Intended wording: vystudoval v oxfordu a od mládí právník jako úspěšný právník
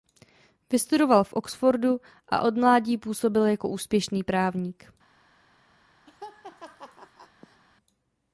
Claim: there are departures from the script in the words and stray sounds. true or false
true